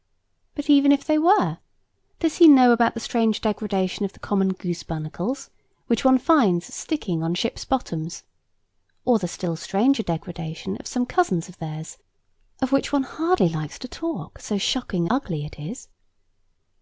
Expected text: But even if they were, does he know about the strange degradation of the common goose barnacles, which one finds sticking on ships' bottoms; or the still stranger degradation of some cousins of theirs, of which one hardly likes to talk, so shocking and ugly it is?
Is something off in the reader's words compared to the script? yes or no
yes